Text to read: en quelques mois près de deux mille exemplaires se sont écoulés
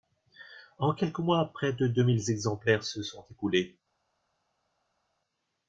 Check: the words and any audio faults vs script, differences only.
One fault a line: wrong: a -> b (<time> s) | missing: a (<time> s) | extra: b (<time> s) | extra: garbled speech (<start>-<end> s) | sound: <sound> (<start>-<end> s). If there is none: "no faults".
no faults